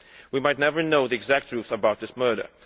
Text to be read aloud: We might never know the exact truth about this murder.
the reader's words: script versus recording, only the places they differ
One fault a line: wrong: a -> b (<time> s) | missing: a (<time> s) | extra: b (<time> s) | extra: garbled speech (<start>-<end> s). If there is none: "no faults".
no faults